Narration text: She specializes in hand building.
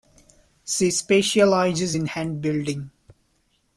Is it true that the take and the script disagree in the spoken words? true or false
false